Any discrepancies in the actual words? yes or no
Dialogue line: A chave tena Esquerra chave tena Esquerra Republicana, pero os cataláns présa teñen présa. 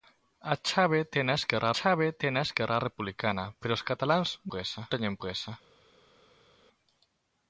no